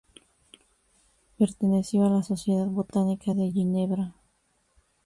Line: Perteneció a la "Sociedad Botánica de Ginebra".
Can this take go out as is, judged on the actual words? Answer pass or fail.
pass